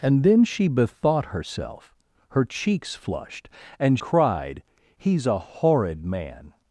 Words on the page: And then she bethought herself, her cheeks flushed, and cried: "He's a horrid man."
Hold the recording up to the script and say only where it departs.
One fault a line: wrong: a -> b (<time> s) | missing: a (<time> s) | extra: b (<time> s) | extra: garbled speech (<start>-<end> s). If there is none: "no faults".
no faults